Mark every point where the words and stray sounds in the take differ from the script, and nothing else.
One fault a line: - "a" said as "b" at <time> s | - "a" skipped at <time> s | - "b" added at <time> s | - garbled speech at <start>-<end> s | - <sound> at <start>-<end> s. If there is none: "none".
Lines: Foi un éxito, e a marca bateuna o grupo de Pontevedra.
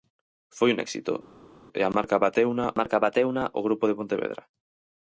- "marca bateuna" added at 2.8 s